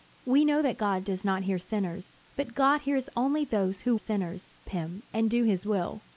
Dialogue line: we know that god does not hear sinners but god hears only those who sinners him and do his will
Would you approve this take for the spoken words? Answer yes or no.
yes